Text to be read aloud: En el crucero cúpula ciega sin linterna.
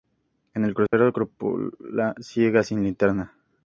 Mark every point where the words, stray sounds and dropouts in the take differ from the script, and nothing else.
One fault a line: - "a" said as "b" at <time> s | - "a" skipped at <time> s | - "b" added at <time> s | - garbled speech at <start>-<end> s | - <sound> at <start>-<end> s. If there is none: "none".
- dropout at 0.9-0.9 s